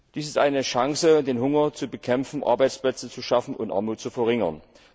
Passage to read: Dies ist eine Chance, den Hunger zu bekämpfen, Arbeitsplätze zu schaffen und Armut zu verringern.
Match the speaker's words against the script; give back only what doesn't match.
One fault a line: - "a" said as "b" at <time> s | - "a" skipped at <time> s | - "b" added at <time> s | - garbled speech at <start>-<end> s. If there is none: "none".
none